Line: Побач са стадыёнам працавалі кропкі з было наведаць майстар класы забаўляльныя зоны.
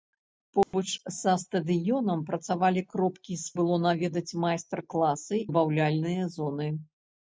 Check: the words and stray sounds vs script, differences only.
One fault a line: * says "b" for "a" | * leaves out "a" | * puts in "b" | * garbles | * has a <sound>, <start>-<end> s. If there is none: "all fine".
* has a dropout, 0.6-0.7 s